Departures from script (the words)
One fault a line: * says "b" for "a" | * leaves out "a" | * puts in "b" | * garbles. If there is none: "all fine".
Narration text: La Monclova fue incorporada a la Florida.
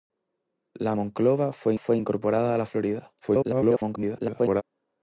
* puts in "fue"
* garbles